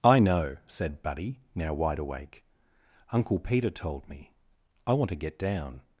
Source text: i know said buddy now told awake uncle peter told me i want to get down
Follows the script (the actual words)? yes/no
no